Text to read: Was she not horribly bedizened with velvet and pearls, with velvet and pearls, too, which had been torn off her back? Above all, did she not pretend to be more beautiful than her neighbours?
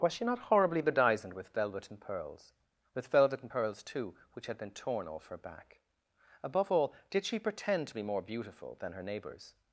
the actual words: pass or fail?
fail